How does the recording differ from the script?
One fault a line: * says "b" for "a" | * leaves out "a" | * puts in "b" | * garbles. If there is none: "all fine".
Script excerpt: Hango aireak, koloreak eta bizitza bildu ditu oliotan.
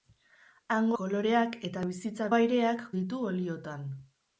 * leaves out "aireak"
* says "aireak" for "bildu"